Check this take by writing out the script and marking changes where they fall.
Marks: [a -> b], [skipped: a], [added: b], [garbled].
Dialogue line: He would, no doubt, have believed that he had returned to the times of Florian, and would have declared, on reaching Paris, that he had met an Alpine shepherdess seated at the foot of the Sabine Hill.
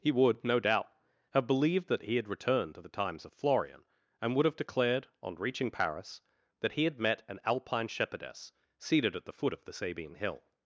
He would, no doubt, have believed that he had returned to the times of Florian, and would have declared, on reaching Paris, that he had met an Alpine shepherdess seated at the foot of the Sabine Hill.